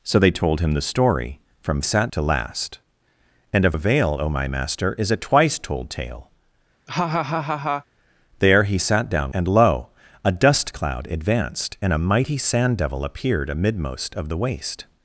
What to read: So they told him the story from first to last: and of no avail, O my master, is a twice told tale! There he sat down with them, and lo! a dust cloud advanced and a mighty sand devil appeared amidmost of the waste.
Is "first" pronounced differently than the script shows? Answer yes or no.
yes